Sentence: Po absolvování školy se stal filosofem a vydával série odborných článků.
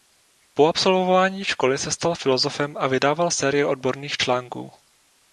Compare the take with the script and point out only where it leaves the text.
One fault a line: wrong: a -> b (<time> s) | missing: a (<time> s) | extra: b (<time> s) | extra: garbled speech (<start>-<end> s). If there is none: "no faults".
no faults